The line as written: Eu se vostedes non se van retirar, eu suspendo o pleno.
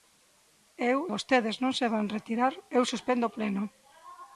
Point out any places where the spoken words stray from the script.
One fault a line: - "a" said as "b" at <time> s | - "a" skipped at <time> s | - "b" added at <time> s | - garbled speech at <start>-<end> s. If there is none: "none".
- "se" skipped at 1.0 s